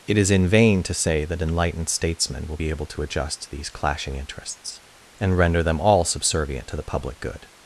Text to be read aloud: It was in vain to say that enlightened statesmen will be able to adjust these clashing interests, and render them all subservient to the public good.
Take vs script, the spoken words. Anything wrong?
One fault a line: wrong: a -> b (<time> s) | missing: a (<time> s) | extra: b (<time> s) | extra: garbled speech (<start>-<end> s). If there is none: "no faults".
wrong: was -> is (0.2 s)